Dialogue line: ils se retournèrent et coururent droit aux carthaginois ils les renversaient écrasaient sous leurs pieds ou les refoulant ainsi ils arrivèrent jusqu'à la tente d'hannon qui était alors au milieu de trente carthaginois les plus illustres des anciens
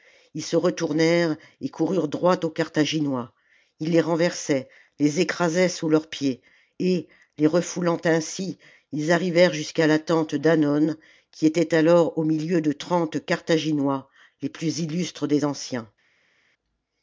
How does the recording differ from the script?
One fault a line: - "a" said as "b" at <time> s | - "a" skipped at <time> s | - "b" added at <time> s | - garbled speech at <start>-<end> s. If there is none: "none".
- "les" added at 5.0 s
- "ou" said as "et" at 6.8 s